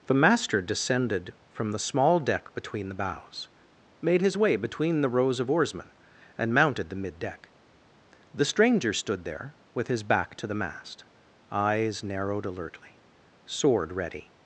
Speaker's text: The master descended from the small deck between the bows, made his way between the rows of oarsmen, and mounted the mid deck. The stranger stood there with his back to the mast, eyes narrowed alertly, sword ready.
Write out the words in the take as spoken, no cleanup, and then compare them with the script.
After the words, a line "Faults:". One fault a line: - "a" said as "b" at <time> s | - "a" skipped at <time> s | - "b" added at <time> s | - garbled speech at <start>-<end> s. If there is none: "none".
The master descended from the small deck between the bows, made his way between the rows of oarsmen, and mounted the mid deck. The stranger stood there with his back to the mast, eyes narrowed alertly, sword ready.
Faults:
none